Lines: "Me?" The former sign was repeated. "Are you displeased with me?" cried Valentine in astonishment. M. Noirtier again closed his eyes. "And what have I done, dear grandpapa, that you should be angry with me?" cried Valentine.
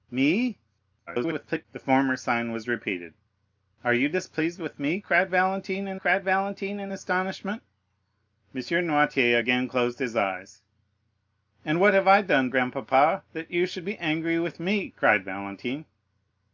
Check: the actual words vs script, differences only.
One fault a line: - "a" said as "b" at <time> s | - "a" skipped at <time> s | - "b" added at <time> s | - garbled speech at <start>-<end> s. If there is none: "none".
- garbled speech at 1.1-1.7 s
- "cried Valentine in" added at 5.9 s
- "dear" skipped at 12.5 s